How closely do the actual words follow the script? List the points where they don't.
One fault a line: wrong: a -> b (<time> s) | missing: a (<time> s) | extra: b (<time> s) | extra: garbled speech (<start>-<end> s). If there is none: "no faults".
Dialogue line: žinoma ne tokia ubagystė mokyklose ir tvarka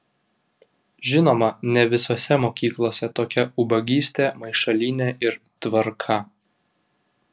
extra: visose mokyklose (1.9 s)
wrong: mokyklose -> maišalynė (4.4 s)